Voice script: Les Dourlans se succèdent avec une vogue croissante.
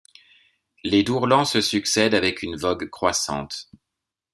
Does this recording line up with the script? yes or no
yes